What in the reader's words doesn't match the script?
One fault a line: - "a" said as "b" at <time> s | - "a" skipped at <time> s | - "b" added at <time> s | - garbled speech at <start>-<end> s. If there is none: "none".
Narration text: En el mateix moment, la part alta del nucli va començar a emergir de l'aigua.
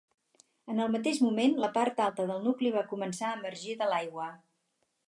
none